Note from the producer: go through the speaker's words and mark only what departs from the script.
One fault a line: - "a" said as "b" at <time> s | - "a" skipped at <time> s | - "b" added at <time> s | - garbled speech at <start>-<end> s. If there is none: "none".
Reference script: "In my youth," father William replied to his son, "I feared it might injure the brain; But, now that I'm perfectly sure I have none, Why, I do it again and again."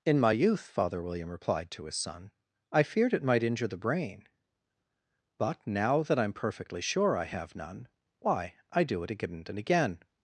none